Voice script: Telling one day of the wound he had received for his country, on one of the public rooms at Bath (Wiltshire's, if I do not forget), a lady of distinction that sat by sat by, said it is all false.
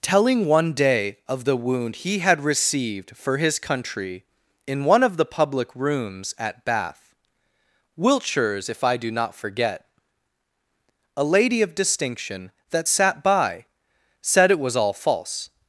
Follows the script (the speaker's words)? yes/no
no